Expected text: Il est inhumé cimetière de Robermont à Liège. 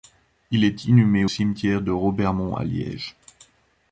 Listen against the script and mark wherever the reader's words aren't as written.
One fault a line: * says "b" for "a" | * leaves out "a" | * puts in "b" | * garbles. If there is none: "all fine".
all fine